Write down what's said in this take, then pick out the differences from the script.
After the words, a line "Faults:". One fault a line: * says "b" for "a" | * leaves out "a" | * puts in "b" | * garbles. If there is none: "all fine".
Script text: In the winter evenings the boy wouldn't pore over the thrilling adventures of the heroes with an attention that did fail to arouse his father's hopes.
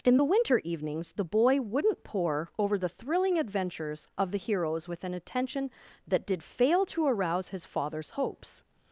In the winter evenings the boy wouldn't pore over the thrilling adventures of the heroes with an attention that did fail to arouse his father's hopes.
Faults:
all fine